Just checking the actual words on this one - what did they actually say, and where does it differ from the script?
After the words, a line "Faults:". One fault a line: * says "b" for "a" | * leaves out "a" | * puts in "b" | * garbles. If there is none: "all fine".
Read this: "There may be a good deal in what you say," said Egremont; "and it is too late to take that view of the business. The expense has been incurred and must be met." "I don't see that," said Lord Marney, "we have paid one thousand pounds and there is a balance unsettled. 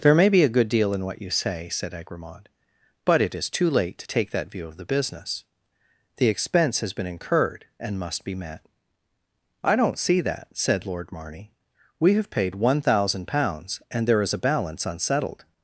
"There may be a good deal in what you say," said Egremont; "but it is too late to take that view of the business. The expense has been incurred and must be met." "I don't see that," said Lord Marney, "we have paid one thousand pounds and there is a balance unsettled.
Faults:
* says "but" for "and"